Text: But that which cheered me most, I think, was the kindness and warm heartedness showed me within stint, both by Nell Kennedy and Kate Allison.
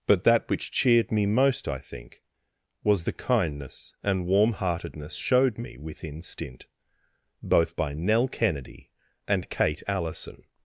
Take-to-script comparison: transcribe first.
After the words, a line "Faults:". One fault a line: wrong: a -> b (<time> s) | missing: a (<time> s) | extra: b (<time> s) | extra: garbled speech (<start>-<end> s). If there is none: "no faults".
But that which cheered me most, I think, was the kindness and warm heartedness showed me within stint, both by Nell Kennedy and Kate Allison.
Faults:
no faults